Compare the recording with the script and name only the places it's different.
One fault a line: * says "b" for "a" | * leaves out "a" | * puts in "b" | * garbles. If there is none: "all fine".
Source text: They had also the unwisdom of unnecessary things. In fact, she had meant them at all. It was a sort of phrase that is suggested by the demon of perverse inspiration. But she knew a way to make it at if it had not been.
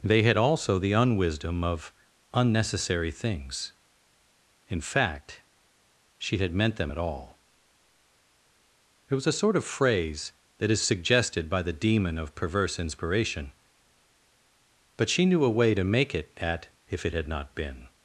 all fine